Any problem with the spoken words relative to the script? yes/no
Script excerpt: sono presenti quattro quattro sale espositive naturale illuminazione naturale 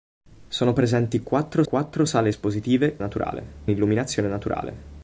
no